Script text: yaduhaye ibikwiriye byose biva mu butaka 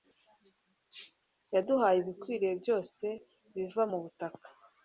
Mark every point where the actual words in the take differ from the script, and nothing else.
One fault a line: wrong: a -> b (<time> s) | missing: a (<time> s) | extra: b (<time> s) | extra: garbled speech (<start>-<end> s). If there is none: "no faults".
no faults